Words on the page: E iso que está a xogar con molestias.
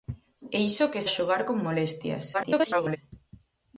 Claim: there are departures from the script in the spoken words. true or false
true